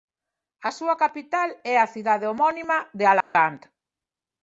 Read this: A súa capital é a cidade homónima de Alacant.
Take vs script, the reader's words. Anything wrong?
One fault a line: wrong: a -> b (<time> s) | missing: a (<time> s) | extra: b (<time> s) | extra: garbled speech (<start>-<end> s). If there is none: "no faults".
no faults